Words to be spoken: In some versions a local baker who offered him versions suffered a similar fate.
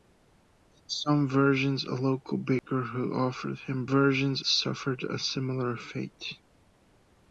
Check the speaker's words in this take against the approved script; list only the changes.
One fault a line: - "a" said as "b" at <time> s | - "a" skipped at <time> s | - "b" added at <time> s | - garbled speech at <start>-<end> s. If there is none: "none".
none